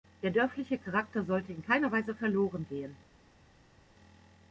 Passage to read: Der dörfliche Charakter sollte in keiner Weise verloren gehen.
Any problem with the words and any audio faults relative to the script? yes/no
no